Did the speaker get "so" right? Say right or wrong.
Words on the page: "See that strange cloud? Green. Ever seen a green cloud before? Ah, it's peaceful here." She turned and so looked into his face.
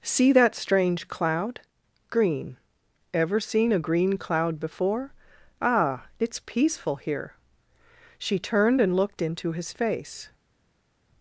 wrong